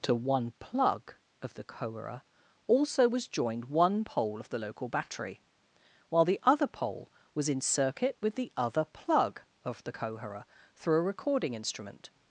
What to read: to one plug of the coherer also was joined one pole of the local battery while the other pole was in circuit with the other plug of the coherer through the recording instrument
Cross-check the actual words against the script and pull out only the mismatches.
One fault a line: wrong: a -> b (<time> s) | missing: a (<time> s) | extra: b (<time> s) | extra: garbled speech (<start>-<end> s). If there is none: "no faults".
wrong: the -> a (11.0 s)